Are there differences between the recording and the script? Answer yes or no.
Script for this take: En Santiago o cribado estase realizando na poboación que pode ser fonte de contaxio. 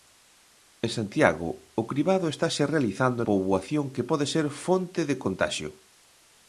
yes